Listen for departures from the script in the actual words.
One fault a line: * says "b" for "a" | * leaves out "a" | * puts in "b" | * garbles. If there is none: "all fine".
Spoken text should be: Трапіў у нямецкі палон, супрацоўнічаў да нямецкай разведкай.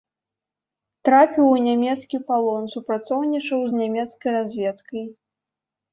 * says "з" for "да"